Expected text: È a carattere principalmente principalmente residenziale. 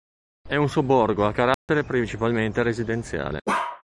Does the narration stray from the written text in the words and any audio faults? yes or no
yes